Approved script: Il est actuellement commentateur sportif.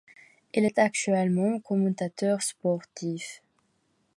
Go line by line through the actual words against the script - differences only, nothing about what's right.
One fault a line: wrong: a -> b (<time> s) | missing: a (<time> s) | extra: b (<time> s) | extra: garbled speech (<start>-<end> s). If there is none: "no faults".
no faults